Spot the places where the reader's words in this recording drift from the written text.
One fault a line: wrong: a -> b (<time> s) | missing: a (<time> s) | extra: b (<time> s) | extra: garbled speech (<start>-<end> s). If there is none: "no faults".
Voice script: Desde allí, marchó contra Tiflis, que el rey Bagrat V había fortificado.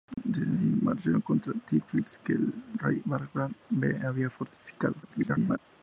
extra: garbled speech (5.0-5.6 s)